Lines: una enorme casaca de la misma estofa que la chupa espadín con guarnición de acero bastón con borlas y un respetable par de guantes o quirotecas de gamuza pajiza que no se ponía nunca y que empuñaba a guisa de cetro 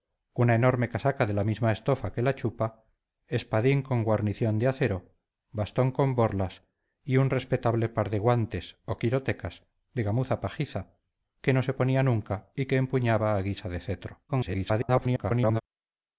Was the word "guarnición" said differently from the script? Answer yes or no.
no